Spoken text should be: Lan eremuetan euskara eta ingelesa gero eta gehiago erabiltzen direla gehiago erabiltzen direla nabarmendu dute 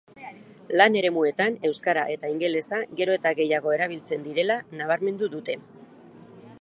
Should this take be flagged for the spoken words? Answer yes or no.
yes